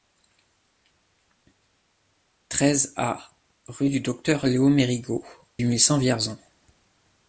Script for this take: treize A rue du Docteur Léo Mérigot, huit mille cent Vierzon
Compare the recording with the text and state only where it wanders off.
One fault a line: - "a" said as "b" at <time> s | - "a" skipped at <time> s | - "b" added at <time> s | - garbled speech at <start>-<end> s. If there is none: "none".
none